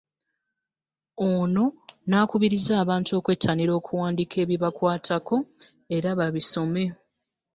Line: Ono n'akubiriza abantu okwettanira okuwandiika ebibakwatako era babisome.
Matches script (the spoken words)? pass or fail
pass